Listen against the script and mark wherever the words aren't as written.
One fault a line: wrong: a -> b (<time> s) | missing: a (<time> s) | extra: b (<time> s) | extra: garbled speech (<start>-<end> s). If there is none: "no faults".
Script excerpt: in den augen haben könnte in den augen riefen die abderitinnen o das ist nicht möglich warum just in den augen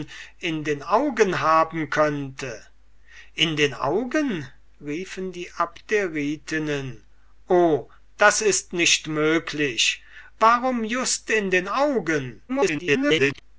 extra: garbled speech (12.5-13.4 s)